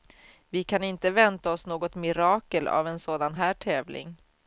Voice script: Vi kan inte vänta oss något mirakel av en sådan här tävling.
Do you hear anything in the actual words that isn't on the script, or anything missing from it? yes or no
no